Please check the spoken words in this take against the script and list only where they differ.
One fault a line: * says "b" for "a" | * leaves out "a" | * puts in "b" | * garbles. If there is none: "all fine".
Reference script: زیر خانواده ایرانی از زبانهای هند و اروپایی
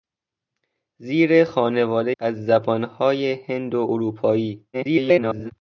* leaves out "ایرانی"
* garbles